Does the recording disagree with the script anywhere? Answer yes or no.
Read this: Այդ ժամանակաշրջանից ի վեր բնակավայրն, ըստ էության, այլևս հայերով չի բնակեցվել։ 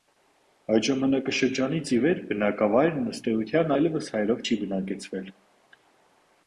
no